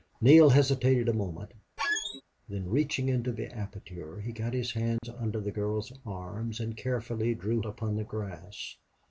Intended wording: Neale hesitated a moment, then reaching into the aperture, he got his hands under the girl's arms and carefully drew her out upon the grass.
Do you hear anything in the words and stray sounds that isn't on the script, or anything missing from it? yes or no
yes